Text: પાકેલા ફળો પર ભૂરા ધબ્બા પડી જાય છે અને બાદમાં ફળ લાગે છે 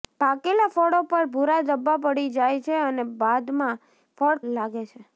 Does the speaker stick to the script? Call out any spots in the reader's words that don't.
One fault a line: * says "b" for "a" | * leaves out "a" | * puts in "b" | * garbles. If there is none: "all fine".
all fine